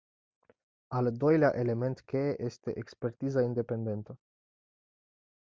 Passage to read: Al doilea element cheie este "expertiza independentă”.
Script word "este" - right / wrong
right